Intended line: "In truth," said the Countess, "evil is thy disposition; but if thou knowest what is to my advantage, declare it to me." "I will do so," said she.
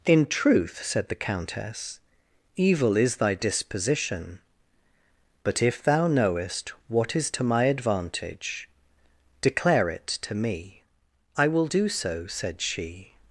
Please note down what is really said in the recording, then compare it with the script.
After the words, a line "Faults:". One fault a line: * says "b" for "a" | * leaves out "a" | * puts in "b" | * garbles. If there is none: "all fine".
"In truth," said the Countess, "evil is thy disposition; but if thou knowest what is to my advantage, declare it to me." "I will do so," said she.
Faults:
all fine